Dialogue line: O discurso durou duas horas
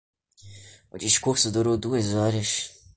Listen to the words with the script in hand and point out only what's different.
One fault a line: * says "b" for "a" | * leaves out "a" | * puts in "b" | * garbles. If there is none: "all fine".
all fine